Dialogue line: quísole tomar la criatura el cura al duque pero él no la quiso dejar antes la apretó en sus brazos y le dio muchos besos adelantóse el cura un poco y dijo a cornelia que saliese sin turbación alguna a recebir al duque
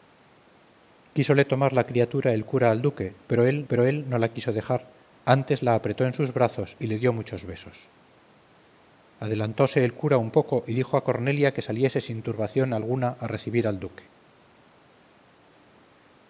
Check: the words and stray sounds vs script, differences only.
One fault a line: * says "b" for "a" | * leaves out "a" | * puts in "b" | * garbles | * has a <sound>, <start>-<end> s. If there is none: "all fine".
* puts in "pero él"